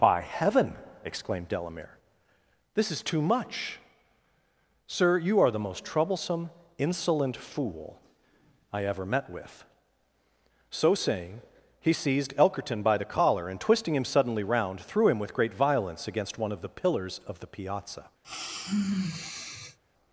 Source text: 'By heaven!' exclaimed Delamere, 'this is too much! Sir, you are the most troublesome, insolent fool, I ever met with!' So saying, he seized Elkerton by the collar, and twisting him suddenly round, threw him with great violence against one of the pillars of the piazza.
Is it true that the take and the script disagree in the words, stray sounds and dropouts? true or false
true